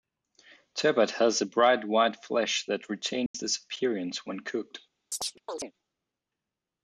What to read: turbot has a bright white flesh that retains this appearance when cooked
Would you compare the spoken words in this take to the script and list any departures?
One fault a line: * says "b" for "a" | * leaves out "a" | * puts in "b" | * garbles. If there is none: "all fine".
all fine